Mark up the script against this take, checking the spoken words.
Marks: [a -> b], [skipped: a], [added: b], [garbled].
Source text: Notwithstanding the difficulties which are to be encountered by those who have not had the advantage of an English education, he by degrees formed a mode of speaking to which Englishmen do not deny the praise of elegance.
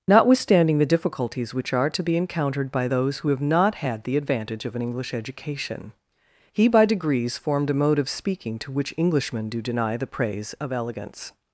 Notwithstanding the difficulties which are to be encountered by those who have not had the advantage of an English education, he by degrees formed a mode of speaking to which Englishmen do [skipped: not] deny the praise of elegance.